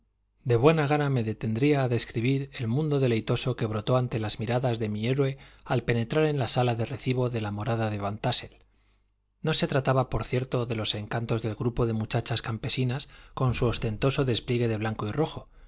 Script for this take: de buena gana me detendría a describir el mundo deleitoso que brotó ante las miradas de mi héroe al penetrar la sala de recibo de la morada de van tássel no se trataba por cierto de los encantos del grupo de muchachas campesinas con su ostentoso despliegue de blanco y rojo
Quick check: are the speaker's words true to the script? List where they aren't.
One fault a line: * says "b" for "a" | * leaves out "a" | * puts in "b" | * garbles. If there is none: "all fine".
* puts in "en"